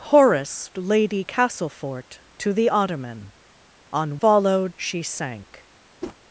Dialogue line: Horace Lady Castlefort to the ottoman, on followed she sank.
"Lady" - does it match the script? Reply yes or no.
yes